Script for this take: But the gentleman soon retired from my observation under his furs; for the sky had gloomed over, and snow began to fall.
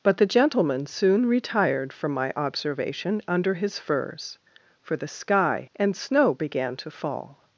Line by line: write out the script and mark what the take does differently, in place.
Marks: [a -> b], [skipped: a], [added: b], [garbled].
But the gentleman soon retired from my observation under his furs; for the sky [skipped: had gloomed over,] and snow began to fall.